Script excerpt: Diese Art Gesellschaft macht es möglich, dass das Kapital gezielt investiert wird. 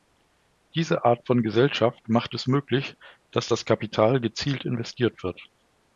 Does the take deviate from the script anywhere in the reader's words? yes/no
yes